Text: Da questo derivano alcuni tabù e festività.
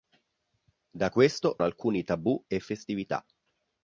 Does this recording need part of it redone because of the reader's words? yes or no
yes